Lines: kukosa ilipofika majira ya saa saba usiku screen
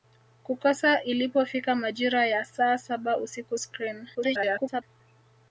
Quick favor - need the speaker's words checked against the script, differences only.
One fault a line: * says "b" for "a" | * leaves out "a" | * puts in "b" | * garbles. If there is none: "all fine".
* garbles